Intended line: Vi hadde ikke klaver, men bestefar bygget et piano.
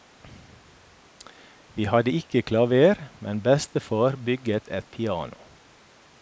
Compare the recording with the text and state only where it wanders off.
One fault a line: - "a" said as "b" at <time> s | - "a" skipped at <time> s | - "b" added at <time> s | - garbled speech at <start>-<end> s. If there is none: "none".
none